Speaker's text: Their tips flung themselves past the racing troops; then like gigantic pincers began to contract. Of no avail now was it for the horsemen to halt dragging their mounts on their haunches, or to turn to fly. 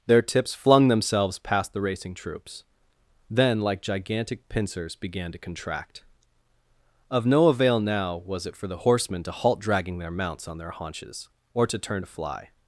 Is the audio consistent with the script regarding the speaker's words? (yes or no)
yes